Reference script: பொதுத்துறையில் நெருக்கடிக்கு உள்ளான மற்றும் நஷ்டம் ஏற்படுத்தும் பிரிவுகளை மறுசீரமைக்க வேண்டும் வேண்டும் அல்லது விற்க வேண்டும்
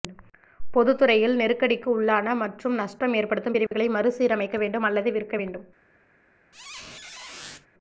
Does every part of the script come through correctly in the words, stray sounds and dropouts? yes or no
no